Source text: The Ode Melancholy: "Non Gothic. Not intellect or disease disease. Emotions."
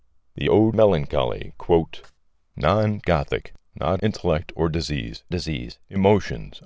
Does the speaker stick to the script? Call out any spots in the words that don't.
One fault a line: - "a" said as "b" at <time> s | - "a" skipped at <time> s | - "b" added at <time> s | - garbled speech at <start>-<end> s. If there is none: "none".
none